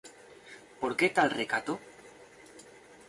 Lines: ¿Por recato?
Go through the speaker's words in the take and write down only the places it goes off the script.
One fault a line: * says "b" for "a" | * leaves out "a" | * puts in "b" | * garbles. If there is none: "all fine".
* puts in "qué tal"